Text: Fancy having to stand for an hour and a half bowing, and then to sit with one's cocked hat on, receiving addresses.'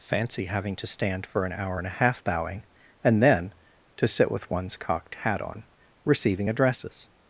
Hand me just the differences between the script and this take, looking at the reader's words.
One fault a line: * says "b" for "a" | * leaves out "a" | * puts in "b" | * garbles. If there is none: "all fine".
all fine